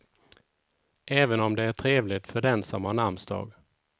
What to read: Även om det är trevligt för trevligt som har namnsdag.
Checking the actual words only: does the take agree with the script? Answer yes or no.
no